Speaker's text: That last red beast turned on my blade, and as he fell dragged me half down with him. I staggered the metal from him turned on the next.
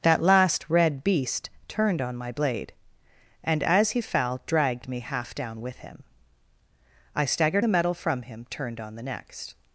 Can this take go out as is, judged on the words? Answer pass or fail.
pass